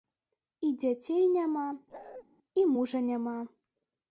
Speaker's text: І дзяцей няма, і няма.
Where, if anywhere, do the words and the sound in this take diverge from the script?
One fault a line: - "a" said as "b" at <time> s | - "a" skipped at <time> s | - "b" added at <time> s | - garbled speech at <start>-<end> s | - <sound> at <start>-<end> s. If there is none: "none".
- bark at 1.9-2.2 s
- "мужа" added at 2.7 s